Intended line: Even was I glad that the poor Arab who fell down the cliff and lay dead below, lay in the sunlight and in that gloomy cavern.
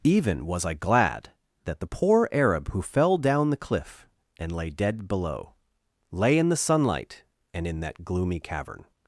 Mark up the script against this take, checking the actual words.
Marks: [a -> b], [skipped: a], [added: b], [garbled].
Even was I glad that the poor Arab who fell down the cliff and lay dead below, lay in the sunlight and in that gloomy cavern.